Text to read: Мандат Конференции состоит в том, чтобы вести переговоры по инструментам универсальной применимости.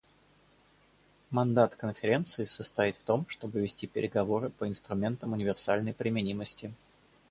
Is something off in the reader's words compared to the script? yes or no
no